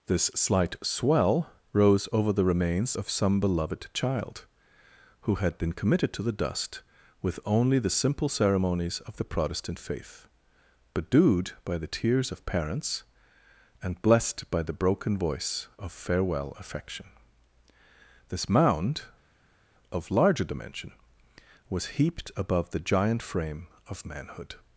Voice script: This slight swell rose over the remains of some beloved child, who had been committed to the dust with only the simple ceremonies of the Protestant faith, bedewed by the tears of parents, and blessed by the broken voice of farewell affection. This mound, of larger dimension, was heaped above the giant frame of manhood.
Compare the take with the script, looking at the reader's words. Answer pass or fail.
pass